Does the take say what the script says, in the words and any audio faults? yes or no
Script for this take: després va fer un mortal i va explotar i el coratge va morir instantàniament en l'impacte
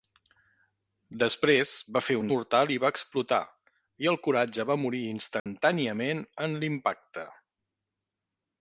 no